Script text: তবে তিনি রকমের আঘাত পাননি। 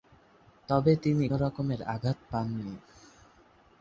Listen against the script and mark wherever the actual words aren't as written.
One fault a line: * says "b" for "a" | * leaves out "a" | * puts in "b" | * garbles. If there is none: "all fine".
all fine